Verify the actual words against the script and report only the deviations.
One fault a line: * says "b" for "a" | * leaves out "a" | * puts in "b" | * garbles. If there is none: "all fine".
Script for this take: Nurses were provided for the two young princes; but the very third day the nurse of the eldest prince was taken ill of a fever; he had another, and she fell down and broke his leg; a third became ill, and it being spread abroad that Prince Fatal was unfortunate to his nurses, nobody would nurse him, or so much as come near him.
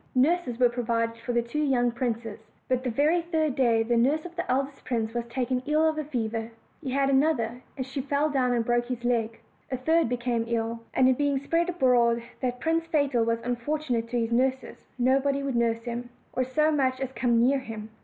all fine